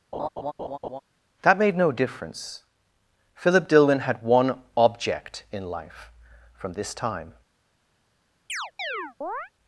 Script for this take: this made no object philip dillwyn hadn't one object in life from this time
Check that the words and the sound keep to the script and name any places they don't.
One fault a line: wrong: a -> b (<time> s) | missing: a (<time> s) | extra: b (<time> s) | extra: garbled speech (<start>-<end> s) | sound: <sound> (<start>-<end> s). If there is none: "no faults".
sound: laugh (0.1-1.0 s)
wrong: this -> that (1.4 s)
wrong: object -> difference (1.9 s)
wrong: hadn't -> had (4.0 s)
sound: chirp (8.5-9.5 s)